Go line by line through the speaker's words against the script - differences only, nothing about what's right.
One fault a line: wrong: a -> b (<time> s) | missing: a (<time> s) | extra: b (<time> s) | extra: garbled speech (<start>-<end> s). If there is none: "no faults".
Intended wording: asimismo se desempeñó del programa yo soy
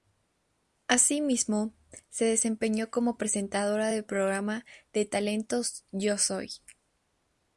extra: como presentadora (2.9 s)
extra: de talentos (4.9 s)